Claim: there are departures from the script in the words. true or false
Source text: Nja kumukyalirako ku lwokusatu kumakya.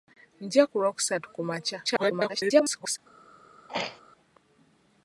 true